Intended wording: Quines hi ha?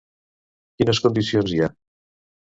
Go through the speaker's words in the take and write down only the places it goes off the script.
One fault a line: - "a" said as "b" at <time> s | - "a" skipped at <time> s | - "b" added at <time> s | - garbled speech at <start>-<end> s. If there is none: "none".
- "condicions" added at 1.1 s